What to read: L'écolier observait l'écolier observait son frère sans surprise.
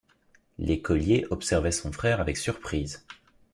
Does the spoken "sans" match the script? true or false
false